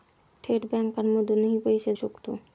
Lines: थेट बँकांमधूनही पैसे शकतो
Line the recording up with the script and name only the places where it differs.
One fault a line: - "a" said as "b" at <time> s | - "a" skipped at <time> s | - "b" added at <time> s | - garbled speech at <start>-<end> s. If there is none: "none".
none